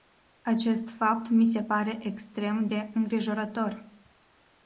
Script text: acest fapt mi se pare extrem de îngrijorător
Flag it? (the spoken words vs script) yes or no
no